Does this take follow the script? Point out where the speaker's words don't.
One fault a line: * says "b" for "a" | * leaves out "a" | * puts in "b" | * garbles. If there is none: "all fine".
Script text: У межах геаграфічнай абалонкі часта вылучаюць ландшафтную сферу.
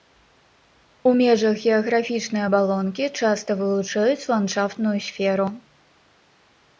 all fine